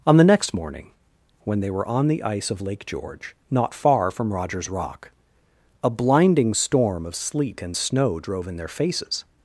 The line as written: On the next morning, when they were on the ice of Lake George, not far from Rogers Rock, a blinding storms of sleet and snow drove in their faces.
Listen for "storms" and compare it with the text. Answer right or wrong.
wrong